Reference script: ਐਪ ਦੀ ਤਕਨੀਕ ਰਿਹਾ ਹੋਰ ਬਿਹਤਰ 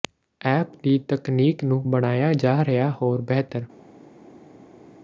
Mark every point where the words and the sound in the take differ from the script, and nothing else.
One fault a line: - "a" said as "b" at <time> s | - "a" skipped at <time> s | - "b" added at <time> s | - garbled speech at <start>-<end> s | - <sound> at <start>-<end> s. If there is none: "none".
- "ਨੂੰ ਬਣਾਇਆ ਜਾ" added at 1.6 s